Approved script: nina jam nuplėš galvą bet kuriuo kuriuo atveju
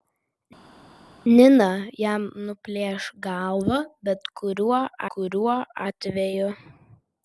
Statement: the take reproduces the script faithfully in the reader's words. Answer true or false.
true